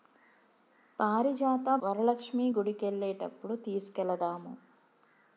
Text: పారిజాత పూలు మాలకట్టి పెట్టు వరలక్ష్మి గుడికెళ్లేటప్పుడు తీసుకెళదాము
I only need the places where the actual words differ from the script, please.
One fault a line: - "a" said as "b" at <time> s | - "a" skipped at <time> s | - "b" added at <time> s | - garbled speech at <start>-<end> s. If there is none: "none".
- "పూలు మాలకట్టి పెట్టు" skipped at 1.7 s